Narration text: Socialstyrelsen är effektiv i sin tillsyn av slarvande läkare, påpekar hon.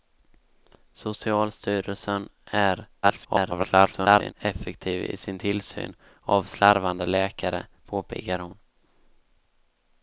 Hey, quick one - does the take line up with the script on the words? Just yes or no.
no